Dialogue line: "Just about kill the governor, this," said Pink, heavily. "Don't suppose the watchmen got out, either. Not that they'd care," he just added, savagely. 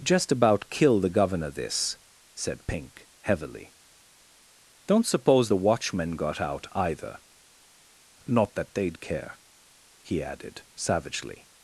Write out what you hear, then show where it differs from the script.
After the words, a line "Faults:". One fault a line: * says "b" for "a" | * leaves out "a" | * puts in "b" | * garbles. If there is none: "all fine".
"Just about kill the governor, this," said Pink, heavily. "Don't suppose the watchmen got out, either. Not that they'd care," he added, savagely.
Faults:
* leaves out "just"